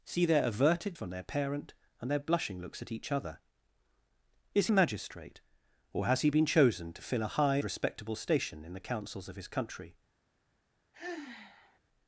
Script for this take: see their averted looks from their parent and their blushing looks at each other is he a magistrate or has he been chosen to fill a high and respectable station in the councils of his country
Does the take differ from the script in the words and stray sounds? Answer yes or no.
yes